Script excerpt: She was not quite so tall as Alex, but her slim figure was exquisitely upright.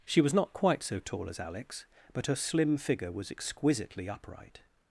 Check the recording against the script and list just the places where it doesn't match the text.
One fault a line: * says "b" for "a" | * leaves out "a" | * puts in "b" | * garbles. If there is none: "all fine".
all fine